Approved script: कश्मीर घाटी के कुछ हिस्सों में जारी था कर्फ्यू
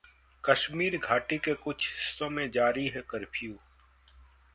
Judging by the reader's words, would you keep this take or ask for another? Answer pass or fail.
fail